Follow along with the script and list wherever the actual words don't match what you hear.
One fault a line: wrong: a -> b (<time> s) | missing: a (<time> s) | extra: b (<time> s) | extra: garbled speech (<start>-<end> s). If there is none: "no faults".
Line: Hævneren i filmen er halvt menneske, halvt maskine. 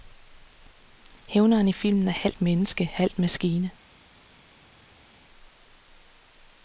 no faults